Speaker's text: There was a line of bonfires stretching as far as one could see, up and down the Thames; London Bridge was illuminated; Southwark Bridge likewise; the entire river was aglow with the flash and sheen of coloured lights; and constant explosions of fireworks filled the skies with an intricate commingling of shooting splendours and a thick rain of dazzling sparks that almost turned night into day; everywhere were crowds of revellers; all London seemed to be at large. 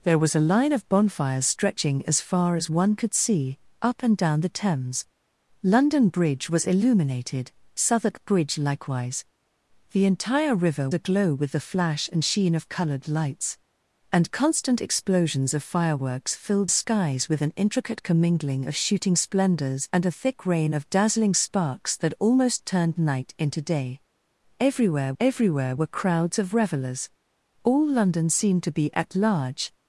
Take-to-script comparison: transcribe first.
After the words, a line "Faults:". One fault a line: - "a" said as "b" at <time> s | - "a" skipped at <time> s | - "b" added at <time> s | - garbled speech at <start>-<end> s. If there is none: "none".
There was a line of bonfires stretching as far as one could see, up and down the Thames; London Bridge was illuminated; Southwark Bridge likewise; the entire river aglow with the flash and sheen of coloured lights; and constant explosions of fireworks filled skies with an intricate commingling of shooting splendours and a thick rain of dazzling sparks that almost turned night into day; everywhere everywhere were crowds of revellers; all London seemed to be at large.
Faults:
- "was" skipped at 10.9 s
- "the" skipped at 16.7 s
- "everywhere" added at 25.2 s